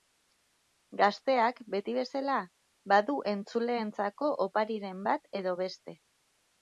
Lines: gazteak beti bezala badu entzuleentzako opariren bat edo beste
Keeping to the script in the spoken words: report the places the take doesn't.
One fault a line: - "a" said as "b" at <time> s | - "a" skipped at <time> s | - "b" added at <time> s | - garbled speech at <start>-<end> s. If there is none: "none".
none